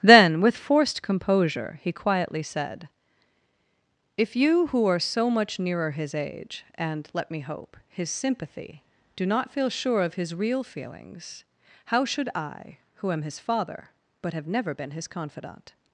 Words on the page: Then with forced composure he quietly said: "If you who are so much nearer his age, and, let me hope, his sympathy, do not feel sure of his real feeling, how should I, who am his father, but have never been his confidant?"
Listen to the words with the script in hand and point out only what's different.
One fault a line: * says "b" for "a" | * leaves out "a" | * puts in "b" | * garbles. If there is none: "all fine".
* says "feelings" for "feeling"